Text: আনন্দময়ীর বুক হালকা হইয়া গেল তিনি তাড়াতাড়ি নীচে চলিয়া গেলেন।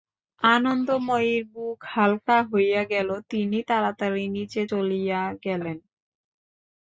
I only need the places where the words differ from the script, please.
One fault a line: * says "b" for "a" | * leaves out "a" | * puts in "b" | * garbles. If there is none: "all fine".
all fine